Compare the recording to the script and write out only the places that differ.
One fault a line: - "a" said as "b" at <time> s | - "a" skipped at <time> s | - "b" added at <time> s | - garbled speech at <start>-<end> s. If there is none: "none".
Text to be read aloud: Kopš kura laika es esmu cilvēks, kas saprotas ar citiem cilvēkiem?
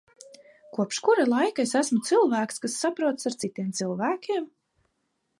none